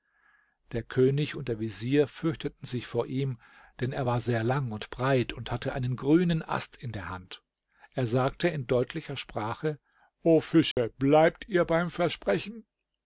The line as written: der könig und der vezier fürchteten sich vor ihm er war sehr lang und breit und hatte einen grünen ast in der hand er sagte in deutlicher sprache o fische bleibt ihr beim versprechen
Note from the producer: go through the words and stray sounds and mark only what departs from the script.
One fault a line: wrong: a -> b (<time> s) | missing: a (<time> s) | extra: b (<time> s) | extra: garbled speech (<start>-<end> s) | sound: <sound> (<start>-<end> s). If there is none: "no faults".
extra: denn (3.8 s)
sound: dropout (10.7-10.8 s)